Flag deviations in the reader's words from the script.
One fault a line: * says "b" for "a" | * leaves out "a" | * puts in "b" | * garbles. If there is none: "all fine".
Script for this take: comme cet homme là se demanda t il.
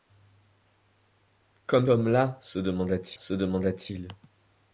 * leaves out "cet"
* puts in "se demanda t"